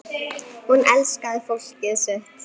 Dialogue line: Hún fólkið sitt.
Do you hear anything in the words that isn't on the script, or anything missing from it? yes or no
yes